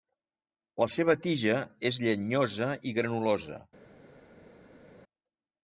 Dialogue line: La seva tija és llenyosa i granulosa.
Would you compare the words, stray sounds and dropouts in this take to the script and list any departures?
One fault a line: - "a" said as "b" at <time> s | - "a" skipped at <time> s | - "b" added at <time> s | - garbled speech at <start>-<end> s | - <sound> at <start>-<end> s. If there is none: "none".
none